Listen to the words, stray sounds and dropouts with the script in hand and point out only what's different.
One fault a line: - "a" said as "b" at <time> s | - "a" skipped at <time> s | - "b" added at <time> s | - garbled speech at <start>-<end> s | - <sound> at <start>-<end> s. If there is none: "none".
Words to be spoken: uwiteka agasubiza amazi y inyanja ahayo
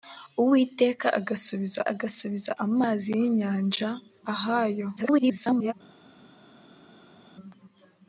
- "agasubiza" added at 1.9 s
- garbled speech at 5.0-5.7 s